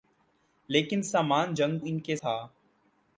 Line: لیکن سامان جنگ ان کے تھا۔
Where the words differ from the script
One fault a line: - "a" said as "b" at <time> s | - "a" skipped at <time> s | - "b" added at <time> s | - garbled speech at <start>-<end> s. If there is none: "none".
none